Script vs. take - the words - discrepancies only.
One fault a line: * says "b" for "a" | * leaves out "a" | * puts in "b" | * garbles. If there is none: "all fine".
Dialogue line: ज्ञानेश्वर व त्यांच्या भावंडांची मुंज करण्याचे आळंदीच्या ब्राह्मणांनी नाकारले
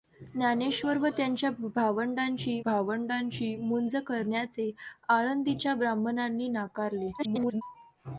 * puts in "भावंडांची"
* garbles